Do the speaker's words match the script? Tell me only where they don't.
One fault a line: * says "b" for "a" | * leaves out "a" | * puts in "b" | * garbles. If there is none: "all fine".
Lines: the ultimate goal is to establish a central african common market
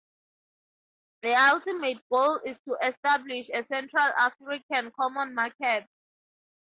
all fine